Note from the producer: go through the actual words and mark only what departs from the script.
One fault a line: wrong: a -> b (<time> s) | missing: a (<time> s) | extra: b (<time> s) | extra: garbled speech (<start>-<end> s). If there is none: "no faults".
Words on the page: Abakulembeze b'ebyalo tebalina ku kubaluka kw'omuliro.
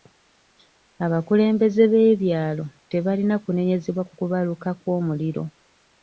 extra: kunenyezebwa (3.4 s)